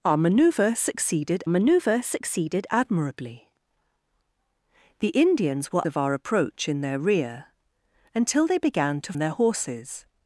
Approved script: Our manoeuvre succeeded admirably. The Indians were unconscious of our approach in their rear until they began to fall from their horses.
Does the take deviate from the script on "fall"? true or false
true